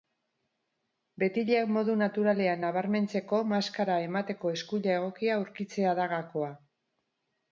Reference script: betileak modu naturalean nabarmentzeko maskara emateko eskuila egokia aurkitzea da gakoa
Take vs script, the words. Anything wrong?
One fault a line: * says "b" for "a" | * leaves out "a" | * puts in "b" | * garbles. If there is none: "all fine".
all fine